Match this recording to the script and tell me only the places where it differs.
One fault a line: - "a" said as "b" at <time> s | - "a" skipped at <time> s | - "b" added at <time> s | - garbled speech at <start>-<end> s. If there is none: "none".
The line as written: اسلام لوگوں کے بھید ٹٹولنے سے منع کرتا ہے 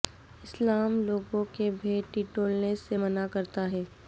none